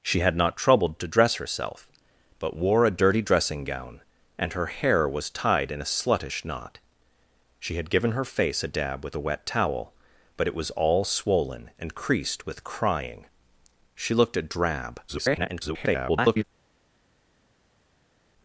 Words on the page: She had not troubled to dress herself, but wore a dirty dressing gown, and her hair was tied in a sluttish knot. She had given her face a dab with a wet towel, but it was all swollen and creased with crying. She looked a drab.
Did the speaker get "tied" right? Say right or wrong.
right